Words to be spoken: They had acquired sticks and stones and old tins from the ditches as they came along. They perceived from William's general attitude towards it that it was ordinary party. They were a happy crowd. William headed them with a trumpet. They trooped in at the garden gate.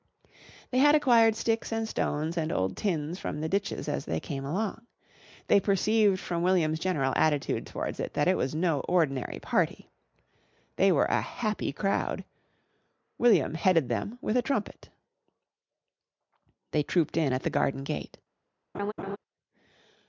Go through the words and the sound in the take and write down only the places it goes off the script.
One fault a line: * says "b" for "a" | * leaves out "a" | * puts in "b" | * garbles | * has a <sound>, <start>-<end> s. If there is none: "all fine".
* puts in "no"
* has a laugh, 18.7-19.2 s